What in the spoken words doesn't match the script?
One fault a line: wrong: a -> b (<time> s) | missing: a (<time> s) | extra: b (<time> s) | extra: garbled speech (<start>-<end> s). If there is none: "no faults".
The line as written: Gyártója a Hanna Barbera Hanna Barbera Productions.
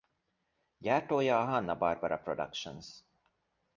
missing: Hanna Barbera (2.2 s)